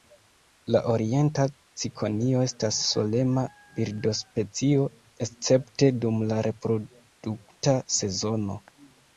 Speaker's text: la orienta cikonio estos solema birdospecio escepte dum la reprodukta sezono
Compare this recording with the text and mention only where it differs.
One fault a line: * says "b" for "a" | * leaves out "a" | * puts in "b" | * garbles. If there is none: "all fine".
* says "estas" for "estos"